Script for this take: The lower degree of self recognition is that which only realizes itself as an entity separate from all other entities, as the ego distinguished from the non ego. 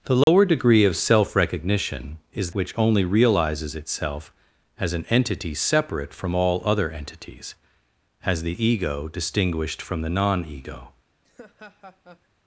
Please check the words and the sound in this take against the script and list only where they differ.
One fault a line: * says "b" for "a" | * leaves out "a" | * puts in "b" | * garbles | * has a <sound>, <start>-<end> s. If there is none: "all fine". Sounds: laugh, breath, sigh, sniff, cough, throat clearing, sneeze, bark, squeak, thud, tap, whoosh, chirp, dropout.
* has a dropout, 0.2-0.3 s
* leaves out "that"
* has a laugh, 11.2-12.3 s